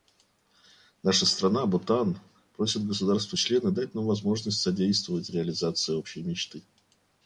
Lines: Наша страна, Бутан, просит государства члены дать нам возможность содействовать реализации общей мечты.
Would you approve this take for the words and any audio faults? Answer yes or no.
yes